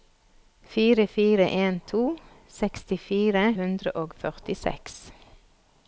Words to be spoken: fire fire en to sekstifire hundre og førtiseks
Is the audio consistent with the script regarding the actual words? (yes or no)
yes